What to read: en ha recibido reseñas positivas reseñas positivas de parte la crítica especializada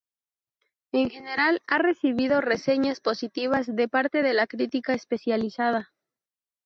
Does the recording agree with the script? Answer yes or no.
no